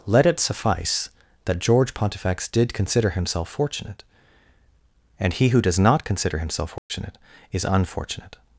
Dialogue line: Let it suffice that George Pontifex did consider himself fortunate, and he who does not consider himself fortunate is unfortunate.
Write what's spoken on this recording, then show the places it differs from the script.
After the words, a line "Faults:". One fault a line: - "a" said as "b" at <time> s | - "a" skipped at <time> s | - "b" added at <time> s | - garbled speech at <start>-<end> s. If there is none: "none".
Let it suffice that George Pontifex did consider himself fortunate, and he who does not consider himself fortunate is unfortunate.
Faults:
none